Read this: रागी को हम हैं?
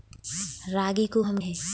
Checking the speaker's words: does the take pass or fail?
pass